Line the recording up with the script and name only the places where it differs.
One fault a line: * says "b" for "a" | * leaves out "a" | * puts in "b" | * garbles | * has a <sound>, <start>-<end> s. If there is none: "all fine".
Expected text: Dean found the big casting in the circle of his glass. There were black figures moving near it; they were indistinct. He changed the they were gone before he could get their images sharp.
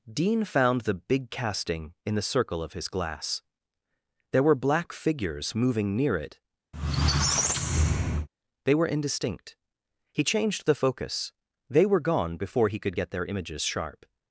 * has a squeak, 6.7-8.3 s
* puts in "focus"